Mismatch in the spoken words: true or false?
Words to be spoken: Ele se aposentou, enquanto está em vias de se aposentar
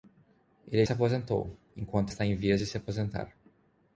false